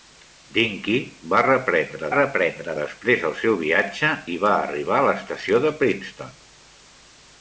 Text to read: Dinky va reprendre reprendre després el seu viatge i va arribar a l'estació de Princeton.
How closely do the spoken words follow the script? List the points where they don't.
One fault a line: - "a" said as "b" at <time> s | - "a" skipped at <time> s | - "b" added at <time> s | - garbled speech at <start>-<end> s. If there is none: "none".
none